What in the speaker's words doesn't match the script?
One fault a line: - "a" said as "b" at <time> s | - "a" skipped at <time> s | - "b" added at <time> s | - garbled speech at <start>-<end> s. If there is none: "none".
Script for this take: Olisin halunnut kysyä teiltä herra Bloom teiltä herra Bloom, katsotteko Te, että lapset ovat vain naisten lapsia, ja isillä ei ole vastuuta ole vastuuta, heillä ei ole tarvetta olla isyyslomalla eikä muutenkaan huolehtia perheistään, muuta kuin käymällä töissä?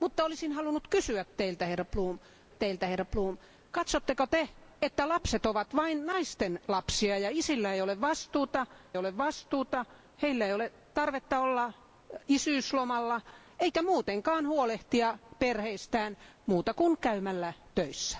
none